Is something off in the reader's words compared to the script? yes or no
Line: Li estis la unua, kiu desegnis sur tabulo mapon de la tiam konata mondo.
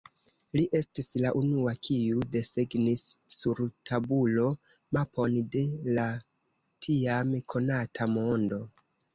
no